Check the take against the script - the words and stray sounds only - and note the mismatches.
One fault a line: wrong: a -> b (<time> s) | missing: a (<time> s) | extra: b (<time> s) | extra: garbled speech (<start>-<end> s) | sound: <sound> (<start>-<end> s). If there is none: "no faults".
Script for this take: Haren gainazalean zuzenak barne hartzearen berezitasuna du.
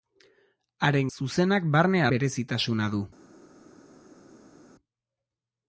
missing: gainazalean (1.1 s)
missing: hartzearen (2.0 s)